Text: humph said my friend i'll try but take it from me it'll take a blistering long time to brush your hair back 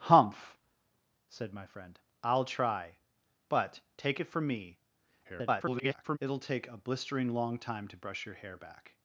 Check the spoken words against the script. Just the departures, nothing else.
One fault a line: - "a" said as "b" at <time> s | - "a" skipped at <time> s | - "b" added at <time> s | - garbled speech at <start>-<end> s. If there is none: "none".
- garbled speech at 5.2-6.2 s